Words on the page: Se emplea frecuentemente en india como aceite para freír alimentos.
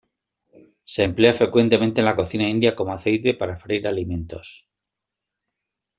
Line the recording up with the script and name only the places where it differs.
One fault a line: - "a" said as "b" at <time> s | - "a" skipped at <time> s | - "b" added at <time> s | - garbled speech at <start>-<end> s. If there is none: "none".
- "la cocina" added at 2.1 s